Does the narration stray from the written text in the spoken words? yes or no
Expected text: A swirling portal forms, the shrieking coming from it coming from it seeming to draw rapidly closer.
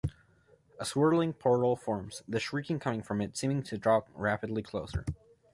yes